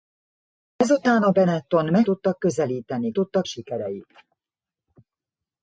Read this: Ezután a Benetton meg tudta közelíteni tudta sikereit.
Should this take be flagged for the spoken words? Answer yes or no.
no